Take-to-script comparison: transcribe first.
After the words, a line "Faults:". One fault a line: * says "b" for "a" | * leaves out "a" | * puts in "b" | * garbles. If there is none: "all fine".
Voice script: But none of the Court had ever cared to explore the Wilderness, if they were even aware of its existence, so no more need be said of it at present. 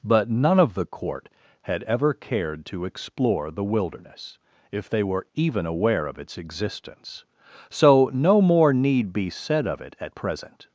But none of the Court had ever cared to explore the Wilderness, if they were even aware of its existence, so no more need be said of it at present.
Faults:
all fine